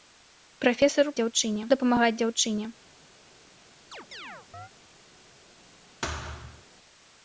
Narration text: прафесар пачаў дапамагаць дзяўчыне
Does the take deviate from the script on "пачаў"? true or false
true